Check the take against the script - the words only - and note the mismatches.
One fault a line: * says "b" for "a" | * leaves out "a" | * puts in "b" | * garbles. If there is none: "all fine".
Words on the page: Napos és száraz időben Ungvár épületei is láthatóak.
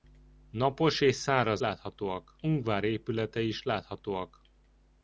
* says "láthatóak" for "időben"